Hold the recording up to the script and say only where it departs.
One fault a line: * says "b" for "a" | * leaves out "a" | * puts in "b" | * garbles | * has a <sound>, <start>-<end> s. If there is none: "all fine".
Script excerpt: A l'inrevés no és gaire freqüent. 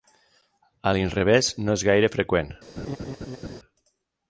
* has a laugh, 2.8-3.6 s